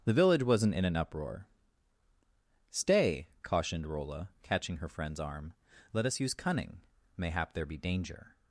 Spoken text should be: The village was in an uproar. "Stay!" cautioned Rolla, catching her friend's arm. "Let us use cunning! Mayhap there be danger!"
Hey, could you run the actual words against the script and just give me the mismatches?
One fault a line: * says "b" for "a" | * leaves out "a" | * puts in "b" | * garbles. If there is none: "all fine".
* says "wasn't" for "was"